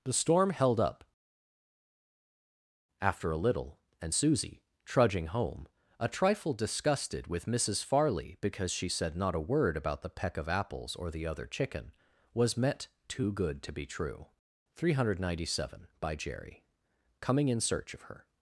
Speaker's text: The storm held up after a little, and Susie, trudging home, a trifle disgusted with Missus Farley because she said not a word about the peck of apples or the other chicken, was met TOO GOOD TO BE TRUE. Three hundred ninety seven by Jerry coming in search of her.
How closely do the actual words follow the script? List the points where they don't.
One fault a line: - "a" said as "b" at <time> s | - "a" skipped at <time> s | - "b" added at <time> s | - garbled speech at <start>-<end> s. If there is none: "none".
none